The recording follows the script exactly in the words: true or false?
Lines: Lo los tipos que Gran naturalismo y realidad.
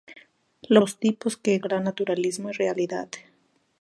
true